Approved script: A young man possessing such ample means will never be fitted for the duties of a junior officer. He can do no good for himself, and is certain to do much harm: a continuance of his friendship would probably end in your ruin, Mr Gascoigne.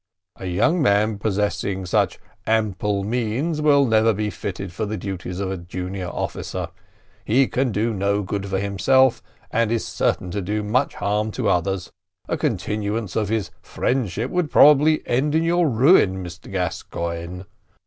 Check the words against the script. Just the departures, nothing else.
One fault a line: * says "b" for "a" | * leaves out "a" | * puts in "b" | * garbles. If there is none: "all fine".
* puts in "to others"